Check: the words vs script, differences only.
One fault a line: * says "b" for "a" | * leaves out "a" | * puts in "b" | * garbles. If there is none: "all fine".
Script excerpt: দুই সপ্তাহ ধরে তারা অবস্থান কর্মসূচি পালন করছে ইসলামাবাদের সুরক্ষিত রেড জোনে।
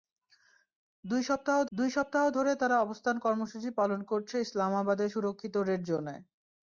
* puts in "দুই সপ্তাহ"